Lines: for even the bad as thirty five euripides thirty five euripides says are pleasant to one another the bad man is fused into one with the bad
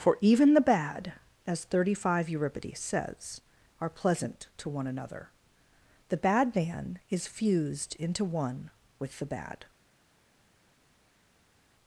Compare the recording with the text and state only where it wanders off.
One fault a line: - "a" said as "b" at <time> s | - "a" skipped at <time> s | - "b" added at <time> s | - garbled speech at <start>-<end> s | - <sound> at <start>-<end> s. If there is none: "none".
- "thirty five euripides" skipped at 2.8 s